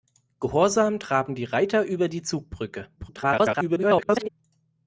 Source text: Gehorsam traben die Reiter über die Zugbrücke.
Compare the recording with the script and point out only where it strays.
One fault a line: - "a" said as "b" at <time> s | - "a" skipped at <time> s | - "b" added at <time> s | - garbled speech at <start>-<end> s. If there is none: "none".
- garbled speech at 3.0-4.3 s